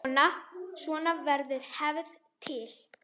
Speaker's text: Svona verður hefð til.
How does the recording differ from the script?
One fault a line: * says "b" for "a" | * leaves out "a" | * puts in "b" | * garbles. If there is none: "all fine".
all fine